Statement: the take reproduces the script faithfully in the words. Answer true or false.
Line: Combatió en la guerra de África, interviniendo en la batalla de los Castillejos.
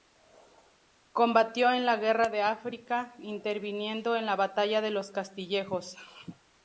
true